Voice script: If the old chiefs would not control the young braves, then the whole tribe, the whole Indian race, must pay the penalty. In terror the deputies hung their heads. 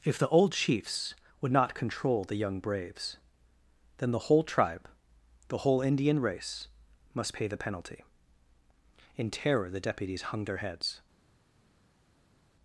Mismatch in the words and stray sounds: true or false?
false